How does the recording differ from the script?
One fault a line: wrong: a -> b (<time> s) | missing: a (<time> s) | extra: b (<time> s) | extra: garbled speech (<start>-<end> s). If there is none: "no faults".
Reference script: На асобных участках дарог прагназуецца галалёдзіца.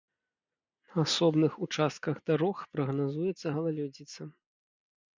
no faults